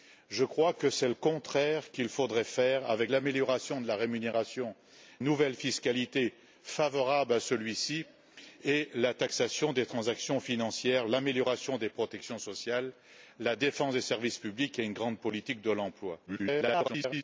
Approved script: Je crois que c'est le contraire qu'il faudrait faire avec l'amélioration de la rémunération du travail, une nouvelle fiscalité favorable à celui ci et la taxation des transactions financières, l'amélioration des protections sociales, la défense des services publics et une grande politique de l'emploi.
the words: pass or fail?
fail